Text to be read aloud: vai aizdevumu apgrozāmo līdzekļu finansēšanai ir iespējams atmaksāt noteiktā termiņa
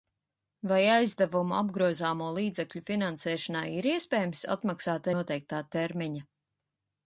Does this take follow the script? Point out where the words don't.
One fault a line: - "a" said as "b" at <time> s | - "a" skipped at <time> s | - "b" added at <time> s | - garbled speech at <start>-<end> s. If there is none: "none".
none